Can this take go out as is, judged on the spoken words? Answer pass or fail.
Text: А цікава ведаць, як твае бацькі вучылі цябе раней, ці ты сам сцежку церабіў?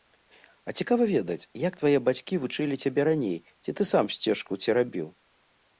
pass